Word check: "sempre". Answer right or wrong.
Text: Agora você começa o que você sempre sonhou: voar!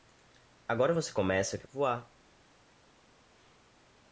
wrong